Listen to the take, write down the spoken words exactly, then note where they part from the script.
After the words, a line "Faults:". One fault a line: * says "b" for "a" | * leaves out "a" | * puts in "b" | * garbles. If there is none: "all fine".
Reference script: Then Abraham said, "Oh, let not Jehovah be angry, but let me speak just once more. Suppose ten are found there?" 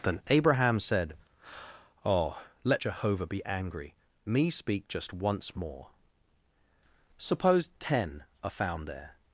Then Abraham said, "Oh, let Jehovah be angry, me speak just once more. Suppose ten are found there?"
Faults:
* leaves out "not"
* leaves out "but let"